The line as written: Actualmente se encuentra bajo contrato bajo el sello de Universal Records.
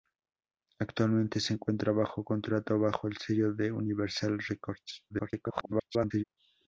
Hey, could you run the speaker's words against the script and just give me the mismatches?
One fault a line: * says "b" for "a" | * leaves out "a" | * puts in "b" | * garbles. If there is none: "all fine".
* garbles